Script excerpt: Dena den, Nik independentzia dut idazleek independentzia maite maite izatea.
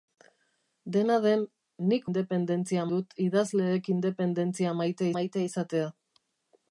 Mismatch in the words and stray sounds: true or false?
false